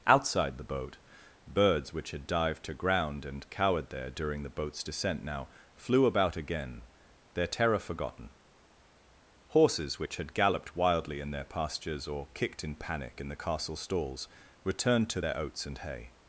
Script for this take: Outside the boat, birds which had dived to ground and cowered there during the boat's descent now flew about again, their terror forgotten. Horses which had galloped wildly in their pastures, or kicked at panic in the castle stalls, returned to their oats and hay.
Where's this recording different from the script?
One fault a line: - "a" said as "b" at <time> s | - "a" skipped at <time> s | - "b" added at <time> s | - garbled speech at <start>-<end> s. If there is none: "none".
- "at" said as "in" at 12.6 s